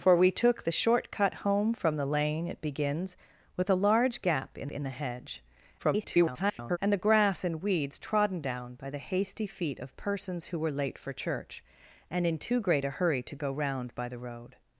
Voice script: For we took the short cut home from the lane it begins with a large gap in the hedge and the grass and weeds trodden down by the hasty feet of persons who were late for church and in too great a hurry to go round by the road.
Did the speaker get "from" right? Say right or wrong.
right